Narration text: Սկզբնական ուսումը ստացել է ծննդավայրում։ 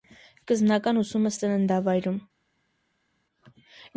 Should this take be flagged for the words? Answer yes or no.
yes